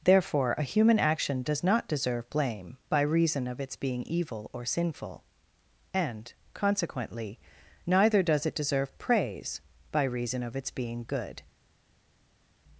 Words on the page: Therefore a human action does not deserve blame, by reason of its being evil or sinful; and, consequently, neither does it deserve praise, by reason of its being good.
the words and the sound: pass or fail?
pass